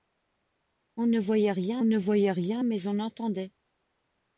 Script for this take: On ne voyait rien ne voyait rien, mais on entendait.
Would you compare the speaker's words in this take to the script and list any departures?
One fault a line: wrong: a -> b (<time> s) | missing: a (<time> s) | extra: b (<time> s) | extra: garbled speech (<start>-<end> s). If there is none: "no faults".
no faults